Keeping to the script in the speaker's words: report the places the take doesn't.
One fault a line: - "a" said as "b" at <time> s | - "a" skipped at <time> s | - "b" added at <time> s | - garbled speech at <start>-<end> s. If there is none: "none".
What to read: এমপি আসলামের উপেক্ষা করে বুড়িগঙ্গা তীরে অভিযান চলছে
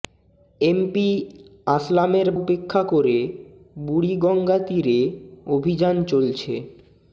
none